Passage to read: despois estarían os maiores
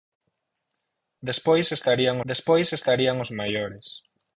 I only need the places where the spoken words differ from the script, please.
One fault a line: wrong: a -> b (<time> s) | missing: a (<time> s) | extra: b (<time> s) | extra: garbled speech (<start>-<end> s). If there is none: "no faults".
extra: despois estarían (2.3 s)